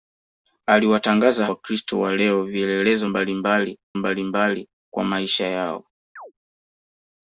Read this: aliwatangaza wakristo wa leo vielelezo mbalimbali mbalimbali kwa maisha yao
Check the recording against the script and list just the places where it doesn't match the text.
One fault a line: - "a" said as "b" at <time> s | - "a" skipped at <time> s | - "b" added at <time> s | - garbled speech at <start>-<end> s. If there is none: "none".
none